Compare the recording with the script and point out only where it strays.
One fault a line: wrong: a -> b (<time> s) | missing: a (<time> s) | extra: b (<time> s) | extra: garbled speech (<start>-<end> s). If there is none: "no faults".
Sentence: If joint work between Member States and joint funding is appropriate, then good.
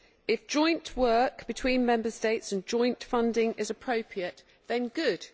no faults